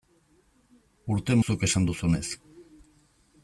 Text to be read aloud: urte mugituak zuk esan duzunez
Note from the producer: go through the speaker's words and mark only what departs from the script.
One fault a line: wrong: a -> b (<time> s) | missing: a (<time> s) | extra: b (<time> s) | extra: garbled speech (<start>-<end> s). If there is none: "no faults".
missing: mugituak (1.4 s)